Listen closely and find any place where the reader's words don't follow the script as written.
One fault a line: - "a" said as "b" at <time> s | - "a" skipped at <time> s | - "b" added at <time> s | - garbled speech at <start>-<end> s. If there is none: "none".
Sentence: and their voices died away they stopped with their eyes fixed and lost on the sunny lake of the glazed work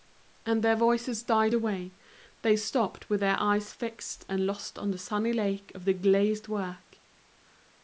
none